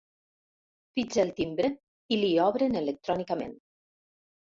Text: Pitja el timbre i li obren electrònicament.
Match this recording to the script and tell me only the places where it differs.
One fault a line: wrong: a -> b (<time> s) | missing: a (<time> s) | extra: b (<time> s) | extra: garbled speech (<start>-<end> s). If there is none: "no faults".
no faults